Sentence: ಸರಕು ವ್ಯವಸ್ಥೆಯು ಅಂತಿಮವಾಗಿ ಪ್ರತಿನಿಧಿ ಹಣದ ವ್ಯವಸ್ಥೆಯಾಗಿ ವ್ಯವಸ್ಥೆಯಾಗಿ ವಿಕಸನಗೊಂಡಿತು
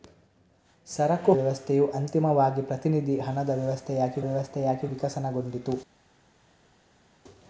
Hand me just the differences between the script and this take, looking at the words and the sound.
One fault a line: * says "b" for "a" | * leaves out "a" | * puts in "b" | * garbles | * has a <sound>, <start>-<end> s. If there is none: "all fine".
all fine